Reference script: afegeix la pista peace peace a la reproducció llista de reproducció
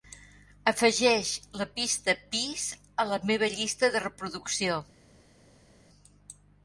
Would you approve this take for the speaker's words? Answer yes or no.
no